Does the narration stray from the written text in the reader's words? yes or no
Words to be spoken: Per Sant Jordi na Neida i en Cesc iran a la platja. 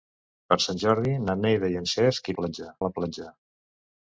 yes